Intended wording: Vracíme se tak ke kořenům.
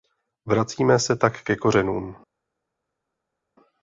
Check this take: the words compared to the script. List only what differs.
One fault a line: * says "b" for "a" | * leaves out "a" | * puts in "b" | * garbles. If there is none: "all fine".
all fine